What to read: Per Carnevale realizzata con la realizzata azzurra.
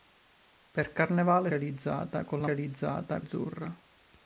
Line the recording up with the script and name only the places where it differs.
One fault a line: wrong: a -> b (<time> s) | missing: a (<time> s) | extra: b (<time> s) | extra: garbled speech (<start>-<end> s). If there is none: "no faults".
no faults